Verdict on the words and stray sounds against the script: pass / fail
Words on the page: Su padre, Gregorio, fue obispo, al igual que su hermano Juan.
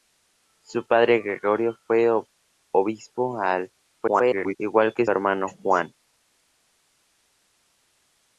fail